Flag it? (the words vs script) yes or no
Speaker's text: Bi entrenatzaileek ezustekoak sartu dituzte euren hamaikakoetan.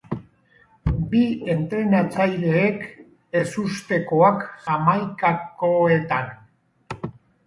yes